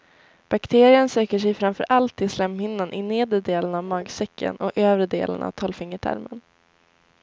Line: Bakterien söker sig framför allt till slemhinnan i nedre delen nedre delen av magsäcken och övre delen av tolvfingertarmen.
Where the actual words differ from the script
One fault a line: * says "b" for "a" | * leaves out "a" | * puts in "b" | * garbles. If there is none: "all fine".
* leaves out "nedre delen"